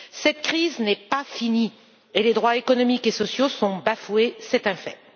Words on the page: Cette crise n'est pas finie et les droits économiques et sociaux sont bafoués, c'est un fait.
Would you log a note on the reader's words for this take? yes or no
no